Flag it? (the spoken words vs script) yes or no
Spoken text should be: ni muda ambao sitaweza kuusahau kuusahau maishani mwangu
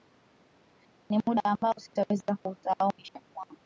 yes